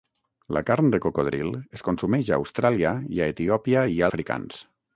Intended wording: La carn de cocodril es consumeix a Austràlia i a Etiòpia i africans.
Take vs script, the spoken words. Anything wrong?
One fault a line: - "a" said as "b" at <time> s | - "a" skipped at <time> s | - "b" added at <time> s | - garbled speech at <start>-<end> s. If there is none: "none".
none